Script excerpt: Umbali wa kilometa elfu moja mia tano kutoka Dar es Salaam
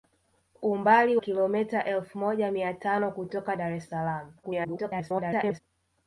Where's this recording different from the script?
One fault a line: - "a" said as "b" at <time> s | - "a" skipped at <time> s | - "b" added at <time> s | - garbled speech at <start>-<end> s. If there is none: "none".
- "wa" skipped at 1.2 s
- garbled speech at 4.4-5.6 s